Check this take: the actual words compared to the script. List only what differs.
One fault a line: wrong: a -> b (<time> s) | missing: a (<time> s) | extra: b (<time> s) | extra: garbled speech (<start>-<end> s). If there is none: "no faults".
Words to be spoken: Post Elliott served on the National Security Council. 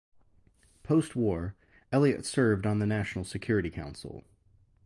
extra: war (1.1 s)